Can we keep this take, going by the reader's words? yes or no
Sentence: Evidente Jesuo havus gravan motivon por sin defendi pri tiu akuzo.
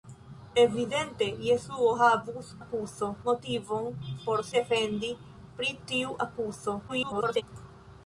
no